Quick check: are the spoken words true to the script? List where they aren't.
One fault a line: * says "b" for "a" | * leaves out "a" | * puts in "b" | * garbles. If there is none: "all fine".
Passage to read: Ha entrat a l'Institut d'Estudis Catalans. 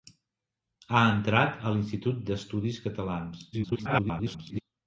* garbles